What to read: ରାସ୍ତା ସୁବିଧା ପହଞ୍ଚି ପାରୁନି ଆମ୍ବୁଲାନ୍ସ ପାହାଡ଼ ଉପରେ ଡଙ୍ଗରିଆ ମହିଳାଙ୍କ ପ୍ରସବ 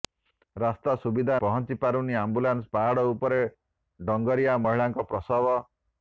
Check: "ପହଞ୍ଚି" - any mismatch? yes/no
no